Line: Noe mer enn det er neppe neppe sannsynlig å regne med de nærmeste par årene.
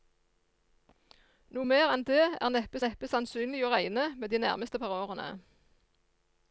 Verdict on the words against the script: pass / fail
pass